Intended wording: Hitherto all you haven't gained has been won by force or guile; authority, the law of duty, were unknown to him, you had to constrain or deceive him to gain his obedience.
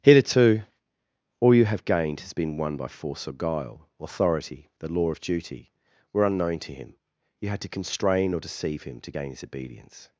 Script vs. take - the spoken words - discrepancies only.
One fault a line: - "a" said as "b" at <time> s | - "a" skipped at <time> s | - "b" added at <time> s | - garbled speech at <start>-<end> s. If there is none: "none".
- "haven't" said as "have" at 1.6 s